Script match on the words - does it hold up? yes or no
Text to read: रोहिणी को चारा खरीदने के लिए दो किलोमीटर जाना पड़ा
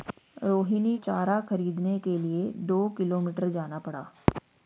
no